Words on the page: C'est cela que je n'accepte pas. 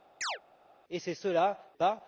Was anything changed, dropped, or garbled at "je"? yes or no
yes